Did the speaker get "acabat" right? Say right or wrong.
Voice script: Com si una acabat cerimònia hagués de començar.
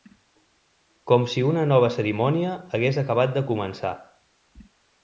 wrong